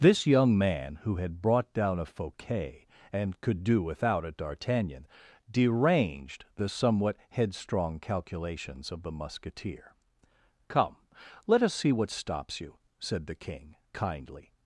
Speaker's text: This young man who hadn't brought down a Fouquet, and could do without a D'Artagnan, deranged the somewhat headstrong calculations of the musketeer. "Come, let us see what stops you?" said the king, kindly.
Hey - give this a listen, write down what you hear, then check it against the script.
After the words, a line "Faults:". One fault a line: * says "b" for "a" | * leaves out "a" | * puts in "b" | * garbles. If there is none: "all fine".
This young man who had brought down a Fouquet, and could do without a D'Artagnan, deranged the somewhat headstrong calculations of the musketeer. "Come, let us see what stops you?" said the king, kindly.
Faults:
* says "had" for "hadn't"